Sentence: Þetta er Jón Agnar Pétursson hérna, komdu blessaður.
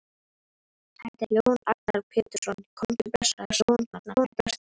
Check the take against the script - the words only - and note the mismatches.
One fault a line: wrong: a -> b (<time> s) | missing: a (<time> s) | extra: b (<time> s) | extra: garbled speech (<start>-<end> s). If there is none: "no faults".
missing: hérna (2.6 s)
extra: garbled speech (3.4-4.6 s)